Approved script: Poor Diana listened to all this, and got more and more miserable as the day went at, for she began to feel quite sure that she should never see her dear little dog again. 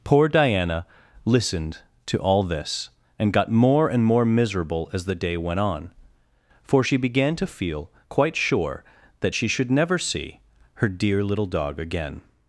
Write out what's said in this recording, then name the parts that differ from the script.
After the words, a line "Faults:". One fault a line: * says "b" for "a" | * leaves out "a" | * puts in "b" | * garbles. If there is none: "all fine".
Poor Diana listened to all this, and got more and more miserable as the day went on, for she began to feel quite sure that she should never see her dear little dog again.
Faults:
* says "on" for "at"